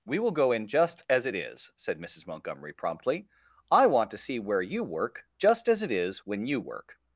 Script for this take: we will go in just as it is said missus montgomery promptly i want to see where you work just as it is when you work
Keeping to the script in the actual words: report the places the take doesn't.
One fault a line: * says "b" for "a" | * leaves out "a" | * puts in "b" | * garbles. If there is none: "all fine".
all fine